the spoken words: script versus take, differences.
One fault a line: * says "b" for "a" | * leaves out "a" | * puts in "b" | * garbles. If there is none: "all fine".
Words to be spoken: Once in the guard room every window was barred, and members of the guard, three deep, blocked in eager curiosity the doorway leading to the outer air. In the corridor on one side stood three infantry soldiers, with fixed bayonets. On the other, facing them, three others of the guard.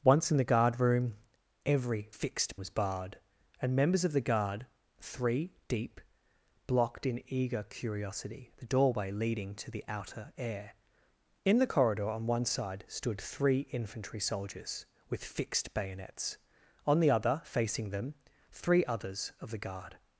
* says "fixed" for "window"